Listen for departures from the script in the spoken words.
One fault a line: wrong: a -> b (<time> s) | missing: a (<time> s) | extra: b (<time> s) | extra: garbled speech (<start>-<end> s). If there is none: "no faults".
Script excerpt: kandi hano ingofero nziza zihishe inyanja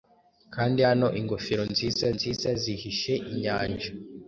extra: nziza (2.2 s)